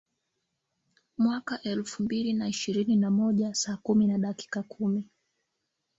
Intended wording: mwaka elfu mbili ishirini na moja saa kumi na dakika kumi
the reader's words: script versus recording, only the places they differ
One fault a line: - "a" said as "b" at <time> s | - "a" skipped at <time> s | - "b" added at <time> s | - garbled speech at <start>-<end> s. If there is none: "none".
- "na" added at 2.3 s